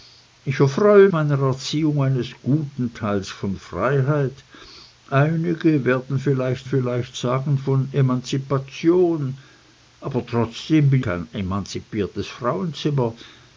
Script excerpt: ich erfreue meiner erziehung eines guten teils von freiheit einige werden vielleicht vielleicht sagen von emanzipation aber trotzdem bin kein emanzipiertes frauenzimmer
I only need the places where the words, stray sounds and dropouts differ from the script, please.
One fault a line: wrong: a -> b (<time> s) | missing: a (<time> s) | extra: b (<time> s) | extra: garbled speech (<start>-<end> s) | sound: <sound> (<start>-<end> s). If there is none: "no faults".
no faults